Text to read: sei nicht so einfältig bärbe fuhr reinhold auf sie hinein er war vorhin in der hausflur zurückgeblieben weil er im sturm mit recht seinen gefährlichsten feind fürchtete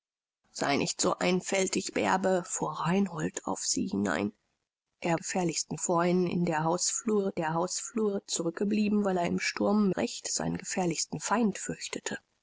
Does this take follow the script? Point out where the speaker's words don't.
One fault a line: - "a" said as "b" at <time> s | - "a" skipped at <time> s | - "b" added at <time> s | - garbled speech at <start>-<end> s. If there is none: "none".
- "war" said as "gefährlichsten" at 5.1 s
- "der hausflur" added at 7.4 s
- "mit" skipped at 9.9 s